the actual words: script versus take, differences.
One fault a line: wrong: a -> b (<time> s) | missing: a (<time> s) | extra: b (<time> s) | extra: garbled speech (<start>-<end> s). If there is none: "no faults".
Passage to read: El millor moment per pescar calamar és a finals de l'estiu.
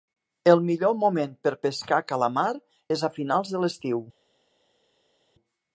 no faults